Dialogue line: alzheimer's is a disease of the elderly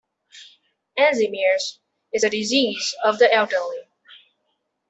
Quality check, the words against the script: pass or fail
pass